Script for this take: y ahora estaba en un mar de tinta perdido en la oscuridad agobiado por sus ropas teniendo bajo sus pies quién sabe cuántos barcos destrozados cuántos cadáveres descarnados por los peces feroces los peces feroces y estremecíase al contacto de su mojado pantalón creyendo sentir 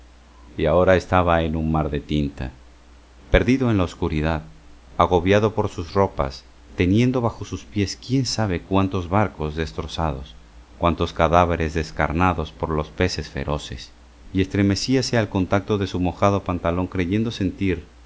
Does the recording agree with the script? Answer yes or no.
no